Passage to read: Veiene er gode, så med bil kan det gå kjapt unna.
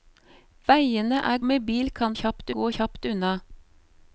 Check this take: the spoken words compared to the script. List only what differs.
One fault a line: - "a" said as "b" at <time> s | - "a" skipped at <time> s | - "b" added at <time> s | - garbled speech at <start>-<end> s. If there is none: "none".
- "gode så" skipped at 1.4 s
- "det" said as "kjapt" at 2.2 s